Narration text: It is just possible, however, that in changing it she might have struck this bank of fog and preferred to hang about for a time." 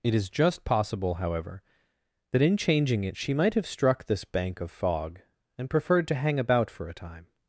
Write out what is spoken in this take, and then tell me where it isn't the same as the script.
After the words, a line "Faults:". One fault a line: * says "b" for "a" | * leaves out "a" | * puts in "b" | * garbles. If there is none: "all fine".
It is just possible, however, that in changing it she might have struck this bank of fog and preferred to hang about for a time."
Faults:
all fine